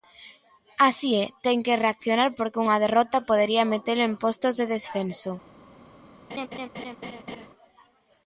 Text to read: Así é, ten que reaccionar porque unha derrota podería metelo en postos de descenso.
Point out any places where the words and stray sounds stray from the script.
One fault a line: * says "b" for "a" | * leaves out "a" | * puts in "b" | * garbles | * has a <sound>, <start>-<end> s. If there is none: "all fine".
* has a laugh, 6.3-7.5 s